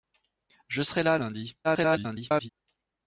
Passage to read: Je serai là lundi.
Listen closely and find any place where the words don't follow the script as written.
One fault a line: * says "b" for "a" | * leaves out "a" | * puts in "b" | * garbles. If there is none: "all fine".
* garbles